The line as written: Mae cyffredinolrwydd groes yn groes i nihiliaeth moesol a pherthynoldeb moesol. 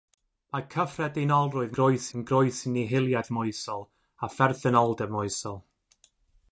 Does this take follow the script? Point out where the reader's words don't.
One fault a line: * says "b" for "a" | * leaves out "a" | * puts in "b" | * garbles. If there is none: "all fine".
all fine